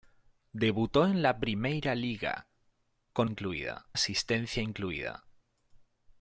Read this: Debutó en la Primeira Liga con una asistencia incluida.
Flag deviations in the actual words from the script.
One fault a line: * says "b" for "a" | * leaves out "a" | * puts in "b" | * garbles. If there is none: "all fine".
* says "incluida" for "una"